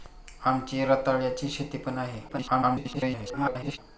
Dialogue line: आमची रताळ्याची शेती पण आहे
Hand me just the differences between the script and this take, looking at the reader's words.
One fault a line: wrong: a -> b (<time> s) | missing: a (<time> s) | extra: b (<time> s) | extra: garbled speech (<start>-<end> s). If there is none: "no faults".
extra: garbled speech (2.3-3.8 s)